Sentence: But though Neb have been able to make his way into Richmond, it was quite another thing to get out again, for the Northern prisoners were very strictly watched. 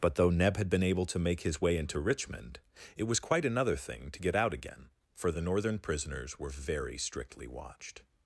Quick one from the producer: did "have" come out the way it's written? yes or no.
no